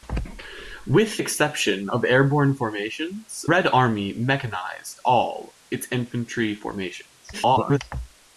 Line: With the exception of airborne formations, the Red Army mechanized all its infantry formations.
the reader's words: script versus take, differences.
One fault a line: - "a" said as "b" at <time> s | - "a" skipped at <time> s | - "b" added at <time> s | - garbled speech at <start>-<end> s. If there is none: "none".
- "the" skipped at 1.2 s
- "the" skipped at 3.4 s
- garbled speech at 7.3-7.8 s